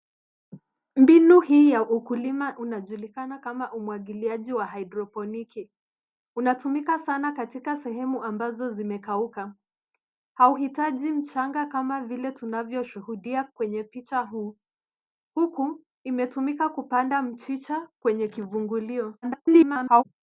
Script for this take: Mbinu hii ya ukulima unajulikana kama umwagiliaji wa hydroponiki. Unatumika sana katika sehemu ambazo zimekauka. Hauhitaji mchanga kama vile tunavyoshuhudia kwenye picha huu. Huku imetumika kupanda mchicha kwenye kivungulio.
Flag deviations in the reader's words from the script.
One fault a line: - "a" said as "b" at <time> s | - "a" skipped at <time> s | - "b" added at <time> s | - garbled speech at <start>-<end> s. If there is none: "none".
- garbled speech at 19.2-20.0 s